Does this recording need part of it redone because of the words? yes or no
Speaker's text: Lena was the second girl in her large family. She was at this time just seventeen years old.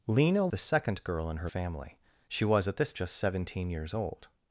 yes